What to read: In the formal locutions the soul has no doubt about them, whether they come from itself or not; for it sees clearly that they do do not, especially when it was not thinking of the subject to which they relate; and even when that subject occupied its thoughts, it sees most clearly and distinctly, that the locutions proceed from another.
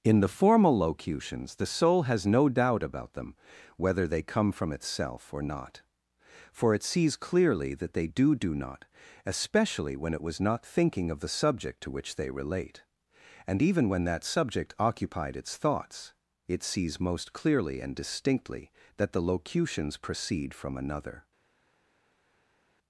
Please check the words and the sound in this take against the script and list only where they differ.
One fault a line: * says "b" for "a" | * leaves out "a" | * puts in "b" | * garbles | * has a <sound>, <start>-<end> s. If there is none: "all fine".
all fine